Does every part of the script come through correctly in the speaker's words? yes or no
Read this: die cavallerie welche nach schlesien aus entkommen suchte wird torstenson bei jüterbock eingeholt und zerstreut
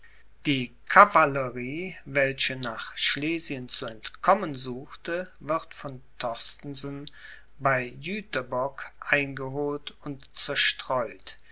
no